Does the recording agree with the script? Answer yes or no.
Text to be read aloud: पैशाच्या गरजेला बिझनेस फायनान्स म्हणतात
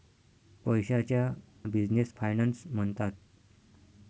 no